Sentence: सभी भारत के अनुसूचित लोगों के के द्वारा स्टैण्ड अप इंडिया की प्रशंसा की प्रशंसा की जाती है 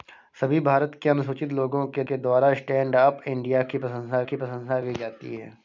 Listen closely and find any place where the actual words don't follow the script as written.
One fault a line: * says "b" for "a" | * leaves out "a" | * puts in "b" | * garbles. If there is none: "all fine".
all fine